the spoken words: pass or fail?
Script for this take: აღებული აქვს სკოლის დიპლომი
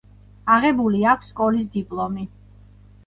pass